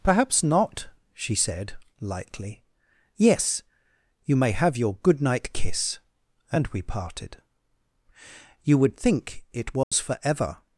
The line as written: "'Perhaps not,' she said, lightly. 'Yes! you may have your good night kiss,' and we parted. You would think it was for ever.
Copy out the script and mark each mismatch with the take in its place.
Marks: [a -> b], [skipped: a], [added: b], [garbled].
"'Perhaps not,' she said, lightly. 'Yes! you may have your good night kiss,' and we parted. You would think it was for ever.